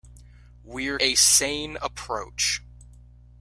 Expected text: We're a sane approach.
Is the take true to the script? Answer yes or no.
yes